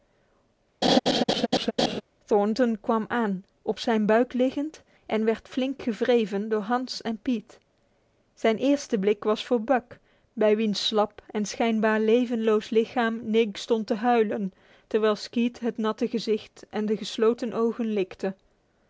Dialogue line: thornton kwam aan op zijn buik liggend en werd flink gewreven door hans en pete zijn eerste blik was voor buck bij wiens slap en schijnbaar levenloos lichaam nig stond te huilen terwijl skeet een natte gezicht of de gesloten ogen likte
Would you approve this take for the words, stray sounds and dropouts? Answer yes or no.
no